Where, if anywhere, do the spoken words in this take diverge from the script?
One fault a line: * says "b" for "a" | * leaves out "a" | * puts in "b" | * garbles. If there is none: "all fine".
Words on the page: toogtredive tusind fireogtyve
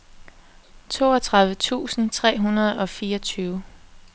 * puts in "tre hundrede og"